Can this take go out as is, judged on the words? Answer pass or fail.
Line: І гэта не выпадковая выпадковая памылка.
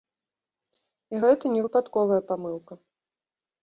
fail